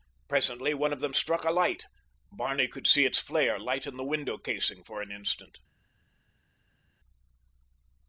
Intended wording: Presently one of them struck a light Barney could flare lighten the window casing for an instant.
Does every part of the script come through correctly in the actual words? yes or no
no